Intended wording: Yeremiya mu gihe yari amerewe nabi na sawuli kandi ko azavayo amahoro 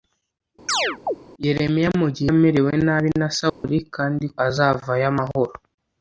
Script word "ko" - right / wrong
wrong